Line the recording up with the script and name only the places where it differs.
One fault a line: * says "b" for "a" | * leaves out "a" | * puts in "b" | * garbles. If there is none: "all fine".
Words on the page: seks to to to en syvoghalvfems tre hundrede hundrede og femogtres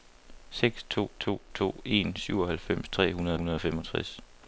all fine